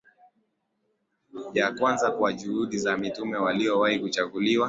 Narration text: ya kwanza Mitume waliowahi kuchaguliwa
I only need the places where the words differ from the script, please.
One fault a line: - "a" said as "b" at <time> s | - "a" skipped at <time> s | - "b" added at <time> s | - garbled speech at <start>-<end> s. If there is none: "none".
- "Kwa juhudi za" added at 2.1 s